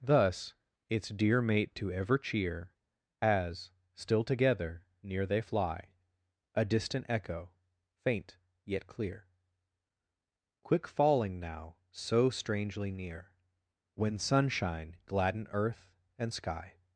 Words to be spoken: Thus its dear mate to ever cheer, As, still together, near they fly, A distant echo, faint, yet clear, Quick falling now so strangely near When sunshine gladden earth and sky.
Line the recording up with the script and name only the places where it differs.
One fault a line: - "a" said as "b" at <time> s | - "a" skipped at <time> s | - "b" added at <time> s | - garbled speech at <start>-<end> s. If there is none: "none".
none